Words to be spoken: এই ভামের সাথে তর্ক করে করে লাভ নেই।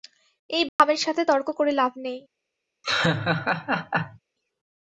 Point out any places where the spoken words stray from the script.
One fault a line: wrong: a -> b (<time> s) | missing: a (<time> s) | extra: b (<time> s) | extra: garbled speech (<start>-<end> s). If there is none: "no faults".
missing: করে (1.7 s)